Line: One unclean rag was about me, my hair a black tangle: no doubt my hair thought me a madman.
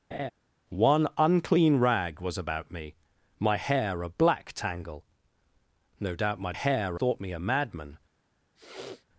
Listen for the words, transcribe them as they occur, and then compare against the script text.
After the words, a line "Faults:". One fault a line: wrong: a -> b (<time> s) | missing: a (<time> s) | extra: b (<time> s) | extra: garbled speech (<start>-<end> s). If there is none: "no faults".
One unclean rag was about me, my hair a black tangle: no doubt my hair thought me a madman.
Faults:
no faults